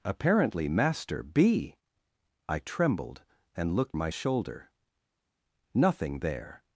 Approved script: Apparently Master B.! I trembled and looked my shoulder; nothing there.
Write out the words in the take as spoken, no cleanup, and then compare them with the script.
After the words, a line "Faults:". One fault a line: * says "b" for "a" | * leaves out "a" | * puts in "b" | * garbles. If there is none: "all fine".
Apparently Master B.! I trembled and looked my shoulder; nothing there.
Faults:
all fine